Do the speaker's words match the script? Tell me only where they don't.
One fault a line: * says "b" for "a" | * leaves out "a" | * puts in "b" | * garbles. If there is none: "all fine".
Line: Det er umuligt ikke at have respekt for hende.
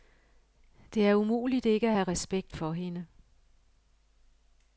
all fine